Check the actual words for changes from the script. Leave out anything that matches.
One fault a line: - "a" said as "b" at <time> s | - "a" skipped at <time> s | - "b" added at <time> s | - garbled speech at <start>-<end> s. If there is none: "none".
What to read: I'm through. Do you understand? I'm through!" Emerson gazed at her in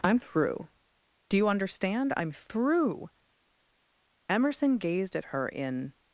none